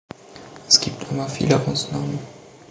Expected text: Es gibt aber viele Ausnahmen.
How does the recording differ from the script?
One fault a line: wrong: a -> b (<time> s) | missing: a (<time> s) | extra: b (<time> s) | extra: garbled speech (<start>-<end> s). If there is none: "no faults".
no faults